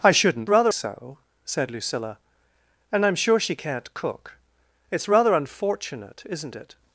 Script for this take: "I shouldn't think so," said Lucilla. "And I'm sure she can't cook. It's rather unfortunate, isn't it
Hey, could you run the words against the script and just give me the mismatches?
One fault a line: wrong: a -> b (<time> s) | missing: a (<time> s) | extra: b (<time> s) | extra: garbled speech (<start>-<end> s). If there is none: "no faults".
wrong: think -> rather (0.5 s)